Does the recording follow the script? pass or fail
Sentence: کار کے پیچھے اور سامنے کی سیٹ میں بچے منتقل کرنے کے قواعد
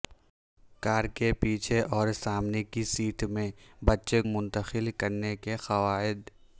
pass